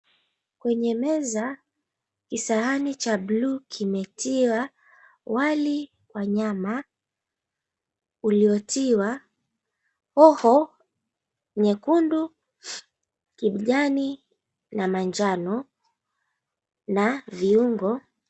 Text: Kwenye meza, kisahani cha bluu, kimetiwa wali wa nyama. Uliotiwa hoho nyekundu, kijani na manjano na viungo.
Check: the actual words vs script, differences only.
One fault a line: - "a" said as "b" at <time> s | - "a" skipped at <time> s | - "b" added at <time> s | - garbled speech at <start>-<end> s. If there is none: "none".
none